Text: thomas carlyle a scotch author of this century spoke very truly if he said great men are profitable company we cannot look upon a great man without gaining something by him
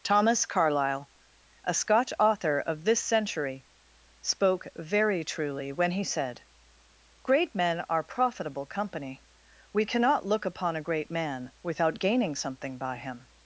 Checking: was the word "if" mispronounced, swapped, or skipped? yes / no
yes